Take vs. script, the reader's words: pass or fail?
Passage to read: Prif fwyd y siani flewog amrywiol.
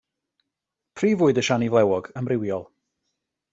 pass